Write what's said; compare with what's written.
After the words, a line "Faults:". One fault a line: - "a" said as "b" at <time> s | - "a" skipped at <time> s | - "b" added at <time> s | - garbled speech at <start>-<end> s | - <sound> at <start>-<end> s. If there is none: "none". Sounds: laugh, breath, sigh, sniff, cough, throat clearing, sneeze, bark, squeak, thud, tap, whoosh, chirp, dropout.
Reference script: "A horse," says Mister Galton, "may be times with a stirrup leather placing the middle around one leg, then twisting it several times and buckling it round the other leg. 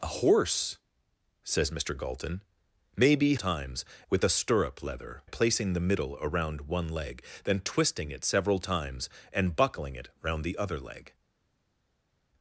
"A horse," says Mister Galton, "may be times with a stirrup leather placing the middle around one leg, then twisting it several times and buckling it round the other leg.
Faults:
none